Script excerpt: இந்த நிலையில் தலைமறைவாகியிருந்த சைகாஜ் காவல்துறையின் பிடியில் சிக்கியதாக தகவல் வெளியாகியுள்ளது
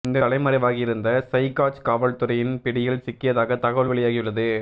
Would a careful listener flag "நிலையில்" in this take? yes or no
yes